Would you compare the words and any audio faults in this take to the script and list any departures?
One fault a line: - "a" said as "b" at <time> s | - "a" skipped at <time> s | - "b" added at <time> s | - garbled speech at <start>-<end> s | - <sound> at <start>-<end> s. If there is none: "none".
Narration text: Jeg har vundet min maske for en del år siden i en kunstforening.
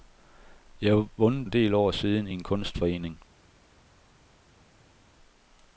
- "min maske for" skipped at 1.5 s